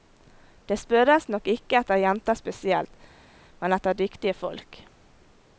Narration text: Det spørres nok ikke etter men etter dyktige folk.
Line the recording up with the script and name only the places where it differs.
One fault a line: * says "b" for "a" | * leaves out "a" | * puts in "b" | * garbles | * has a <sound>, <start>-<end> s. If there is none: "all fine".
* puts in "jenter spesielt"